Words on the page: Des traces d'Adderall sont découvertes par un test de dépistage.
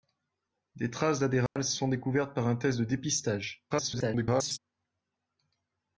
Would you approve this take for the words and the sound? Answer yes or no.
no